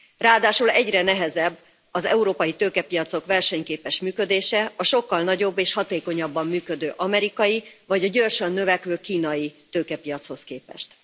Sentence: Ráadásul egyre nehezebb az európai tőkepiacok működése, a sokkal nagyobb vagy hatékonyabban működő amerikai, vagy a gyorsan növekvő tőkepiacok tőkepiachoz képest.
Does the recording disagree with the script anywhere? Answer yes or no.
yes